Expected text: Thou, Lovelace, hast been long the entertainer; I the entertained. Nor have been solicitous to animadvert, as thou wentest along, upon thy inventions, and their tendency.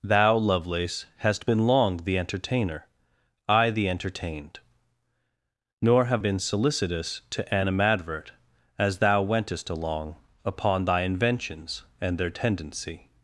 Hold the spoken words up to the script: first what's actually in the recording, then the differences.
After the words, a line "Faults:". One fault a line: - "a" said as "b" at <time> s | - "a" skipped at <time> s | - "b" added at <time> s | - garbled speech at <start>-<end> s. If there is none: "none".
Thou, Lovelace, hast been long the entertainer; I the entertained. Nor have been solicitous to animadvert, as thou wentest along, upon thy inventions, and their tendency.
Faults:
none